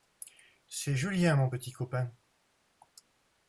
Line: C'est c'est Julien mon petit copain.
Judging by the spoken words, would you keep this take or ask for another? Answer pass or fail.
fail